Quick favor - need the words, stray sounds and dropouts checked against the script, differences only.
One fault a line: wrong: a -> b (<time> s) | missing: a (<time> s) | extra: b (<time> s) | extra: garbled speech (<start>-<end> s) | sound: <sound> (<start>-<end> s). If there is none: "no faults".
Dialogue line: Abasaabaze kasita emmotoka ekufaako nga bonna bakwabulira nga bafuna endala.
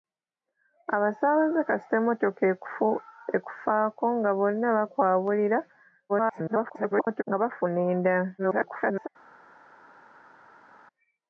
extra: garbled speech (6.1-7.2 s)
extra: garbled speech (8.4-9.1 s)